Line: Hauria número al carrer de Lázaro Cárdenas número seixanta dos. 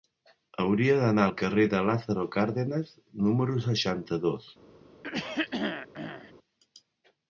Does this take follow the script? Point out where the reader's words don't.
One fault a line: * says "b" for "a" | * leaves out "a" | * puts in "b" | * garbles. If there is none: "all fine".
* says "d'anar" for "número"